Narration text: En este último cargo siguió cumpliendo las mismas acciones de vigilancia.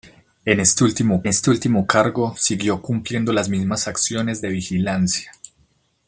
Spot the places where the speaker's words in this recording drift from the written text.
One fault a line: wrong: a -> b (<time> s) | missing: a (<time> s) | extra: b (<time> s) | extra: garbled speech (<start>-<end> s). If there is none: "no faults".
extra: este último (1.3 s)